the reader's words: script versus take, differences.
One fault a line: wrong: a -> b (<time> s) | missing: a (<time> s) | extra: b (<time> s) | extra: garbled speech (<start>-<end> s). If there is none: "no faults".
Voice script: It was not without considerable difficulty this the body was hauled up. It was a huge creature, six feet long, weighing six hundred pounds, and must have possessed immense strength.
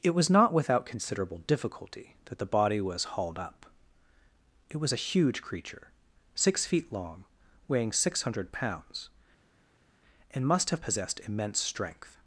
wrong: this -> that (2.2 s)